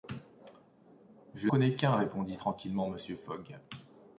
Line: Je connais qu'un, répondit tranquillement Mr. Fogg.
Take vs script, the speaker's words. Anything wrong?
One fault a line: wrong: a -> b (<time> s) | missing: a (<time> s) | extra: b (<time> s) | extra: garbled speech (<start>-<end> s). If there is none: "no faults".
no faults